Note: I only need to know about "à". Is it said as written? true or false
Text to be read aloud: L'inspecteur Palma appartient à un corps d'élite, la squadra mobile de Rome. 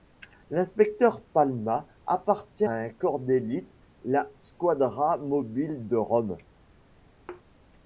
false